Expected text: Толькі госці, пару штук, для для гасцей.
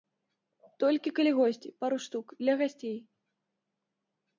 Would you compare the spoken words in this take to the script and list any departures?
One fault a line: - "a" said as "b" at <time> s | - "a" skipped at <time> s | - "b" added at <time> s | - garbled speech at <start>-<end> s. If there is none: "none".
- "калі" added at 1.2 s
- "для" skipped at 2.5 s